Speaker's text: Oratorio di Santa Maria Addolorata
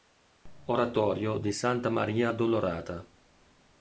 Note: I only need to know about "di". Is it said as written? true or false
true